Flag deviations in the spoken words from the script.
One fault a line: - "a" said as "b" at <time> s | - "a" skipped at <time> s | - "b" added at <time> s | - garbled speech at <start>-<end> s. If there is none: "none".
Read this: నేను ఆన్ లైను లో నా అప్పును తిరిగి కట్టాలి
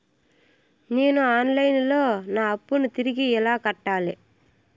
- "ఎలా" added at 3.3 s